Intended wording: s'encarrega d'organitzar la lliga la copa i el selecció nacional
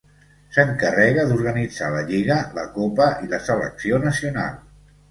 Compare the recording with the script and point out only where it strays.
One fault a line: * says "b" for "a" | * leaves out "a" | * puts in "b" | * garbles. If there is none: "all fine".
* says "la" for "el"